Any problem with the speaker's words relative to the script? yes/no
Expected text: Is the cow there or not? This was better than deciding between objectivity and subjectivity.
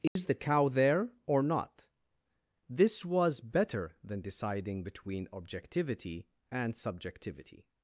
no